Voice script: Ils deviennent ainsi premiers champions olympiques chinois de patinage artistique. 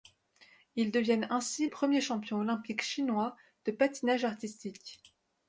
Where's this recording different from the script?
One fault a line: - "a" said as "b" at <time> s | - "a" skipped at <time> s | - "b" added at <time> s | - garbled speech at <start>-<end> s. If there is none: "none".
none